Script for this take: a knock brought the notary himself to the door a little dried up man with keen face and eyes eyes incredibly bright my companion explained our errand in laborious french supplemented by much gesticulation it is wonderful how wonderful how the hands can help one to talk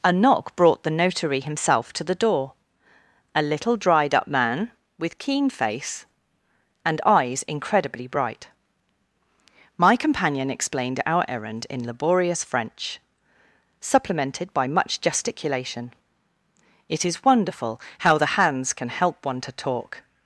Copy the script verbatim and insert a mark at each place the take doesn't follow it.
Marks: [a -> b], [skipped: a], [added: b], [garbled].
a knock brought the notary himself to the door a little dried up man with keen face and eyes [skipped: eyes] incredibly bright my companion explained our errand in laborious french supplemented by much gesticulation it is wonderful how [skipped: wonderful how] the hands can help one to talk